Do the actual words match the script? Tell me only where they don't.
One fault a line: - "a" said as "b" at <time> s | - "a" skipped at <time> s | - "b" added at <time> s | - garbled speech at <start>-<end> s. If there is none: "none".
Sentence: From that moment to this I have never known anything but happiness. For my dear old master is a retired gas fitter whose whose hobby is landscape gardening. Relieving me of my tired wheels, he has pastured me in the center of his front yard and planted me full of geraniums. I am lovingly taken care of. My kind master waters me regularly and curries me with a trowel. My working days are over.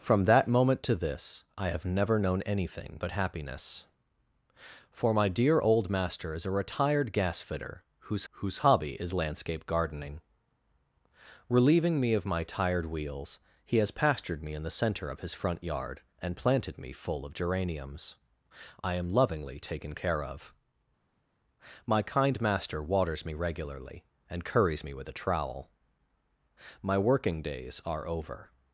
none